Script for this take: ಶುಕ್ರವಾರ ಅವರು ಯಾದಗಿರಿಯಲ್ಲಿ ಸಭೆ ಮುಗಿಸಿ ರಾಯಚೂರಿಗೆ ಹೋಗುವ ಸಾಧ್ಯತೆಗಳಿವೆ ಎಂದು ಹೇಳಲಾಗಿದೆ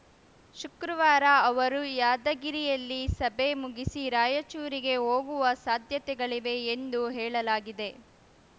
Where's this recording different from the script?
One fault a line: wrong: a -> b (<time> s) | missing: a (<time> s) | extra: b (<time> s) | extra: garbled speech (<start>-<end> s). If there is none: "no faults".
no faults